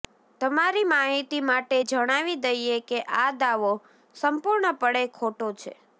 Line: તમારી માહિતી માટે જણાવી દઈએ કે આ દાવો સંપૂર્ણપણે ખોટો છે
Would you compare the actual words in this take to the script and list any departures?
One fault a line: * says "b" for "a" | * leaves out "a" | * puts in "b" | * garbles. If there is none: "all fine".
all fine